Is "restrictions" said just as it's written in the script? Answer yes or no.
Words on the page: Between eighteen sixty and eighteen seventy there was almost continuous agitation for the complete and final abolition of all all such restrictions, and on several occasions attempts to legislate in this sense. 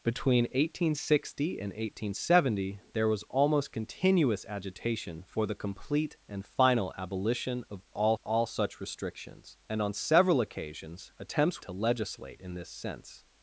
yes